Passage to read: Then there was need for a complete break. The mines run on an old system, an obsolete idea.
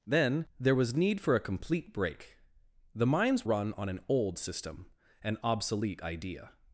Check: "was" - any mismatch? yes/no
no